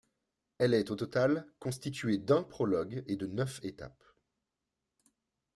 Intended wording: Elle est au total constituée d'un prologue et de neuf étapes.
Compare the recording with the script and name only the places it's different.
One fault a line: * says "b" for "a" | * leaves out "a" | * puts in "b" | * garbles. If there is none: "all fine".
all fine